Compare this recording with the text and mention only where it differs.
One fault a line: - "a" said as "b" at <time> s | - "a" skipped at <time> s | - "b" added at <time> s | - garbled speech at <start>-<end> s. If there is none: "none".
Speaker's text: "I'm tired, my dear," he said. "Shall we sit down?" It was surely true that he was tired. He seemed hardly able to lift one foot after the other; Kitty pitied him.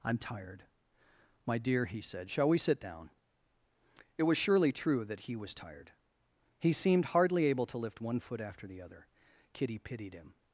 none